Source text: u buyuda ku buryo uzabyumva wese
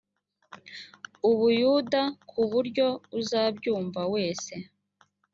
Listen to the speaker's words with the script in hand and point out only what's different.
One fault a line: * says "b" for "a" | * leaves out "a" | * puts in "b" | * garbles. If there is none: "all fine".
all fine